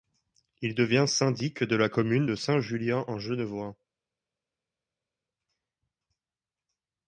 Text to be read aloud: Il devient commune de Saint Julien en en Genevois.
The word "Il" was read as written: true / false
true